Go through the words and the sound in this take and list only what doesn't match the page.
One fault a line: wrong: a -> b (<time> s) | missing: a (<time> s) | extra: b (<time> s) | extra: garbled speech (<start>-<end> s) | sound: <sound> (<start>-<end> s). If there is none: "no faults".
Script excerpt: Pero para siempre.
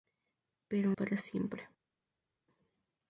no faults